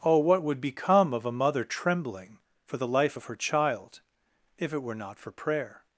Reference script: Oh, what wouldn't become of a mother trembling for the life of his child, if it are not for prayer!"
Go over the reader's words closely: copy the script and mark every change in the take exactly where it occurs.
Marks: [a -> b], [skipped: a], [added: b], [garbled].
Oh, what [wouldn't -> would] become of a mother trembling for the life of [his -> her] child, if it [are -> were] not for prayer!"